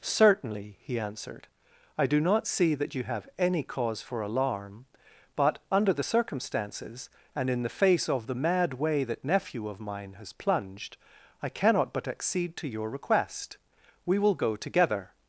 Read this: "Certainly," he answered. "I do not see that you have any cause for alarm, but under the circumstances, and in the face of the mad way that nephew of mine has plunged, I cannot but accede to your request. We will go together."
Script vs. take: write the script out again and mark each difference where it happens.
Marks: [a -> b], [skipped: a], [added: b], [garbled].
"Certainly," he answered. "I do not see that you have any cause for alarm, but under the circumstances, and in the face of the mad way that nephew of mine has plunged, I cannot but accede to your request. We will go together."